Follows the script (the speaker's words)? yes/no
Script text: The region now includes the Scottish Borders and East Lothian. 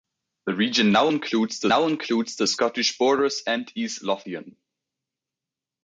no